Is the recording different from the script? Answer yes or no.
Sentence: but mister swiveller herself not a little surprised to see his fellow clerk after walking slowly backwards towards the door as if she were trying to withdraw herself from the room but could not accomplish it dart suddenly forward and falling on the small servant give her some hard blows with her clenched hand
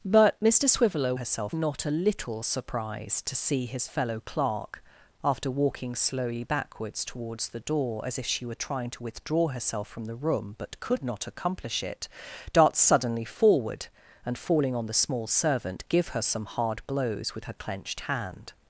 no